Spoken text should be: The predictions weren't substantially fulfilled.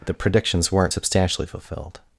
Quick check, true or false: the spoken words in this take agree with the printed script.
true